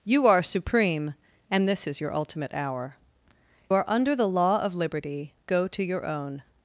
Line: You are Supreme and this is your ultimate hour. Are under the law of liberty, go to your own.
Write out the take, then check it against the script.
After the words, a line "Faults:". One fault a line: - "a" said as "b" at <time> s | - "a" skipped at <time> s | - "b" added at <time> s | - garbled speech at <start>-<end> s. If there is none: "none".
You are Supreme and this is your ultimate hour. Are under the law of liberty, go to your own.
Faults:
none